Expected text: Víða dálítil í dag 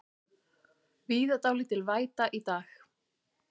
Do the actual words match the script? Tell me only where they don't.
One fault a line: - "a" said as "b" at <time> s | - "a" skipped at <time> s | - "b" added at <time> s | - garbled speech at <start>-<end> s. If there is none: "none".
- "væta" added at 1.9 s